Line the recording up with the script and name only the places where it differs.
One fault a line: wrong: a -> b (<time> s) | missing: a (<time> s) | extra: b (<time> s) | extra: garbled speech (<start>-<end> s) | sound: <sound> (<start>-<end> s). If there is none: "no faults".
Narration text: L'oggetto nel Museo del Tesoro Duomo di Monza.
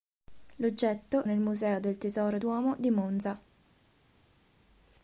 no faults